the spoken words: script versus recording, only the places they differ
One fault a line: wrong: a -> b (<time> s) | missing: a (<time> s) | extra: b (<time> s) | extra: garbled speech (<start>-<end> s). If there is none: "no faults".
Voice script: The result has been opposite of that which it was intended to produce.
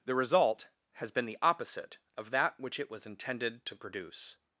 extra: the (1.2 s)